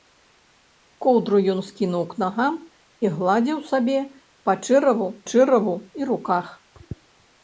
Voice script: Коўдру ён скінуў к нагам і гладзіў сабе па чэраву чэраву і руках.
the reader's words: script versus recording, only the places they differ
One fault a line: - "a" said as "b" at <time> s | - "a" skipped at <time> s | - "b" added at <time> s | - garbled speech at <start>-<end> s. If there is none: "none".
none